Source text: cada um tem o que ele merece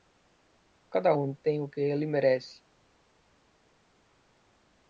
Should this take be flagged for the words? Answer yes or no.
no